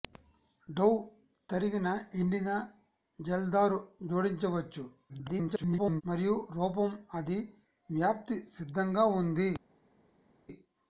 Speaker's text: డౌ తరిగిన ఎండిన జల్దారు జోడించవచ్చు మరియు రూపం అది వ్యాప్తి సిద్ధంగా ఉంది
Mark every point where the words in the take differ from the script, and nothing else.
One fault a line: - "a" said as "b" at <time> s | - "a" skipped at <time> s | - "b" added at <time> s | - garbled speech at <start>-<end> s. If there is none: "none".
- garbled speech at 5.1-6.0 s